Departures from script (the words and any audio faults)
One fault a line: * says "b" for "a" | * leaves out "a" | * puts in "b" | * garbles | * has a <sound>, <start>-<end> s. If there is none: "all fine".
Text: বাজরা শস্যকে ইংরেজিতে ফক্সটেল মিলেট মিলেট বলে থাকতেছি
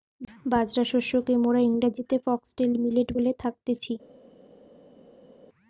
* puts in "মোরা"
* leaves out "মিলেট"